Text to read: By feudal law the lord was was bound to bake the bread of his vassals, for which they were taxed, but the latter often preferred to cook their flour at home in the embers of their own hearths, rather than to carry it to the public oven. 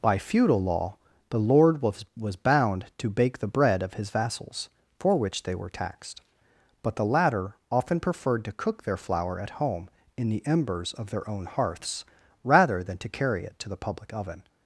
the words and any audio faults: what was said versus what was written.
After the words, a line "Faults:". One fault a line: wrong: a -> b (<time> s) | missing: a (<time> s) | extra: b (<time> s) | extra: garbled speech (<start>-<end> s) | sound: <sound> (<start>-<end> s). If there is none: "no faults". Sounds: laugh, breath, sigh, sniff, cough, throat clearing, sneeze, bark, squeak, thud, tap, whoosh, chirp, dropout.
By feudal law the lord was was bound to bake the bread of his vassals, for which they were taxed, but the latter often preferred to cook their flour at home in the embers of their own hearths, rather than to carry it to the public oven.
Faults:
no faults